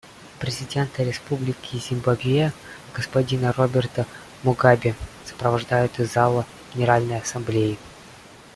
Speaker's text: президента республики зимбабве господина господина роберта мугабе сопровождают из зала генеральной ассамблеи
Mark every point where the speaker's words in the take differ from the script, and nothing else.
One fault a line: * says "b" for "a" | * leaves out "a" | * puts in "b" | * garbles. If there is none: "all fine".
* leaves out "господина"